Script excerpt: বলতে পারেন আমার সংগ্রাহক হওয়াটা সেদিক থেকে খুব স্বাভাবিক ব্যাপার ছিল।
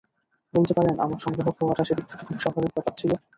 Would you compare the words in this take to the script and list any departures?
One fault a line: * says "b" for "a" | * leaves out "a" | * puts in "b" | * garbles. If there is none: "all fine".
all fine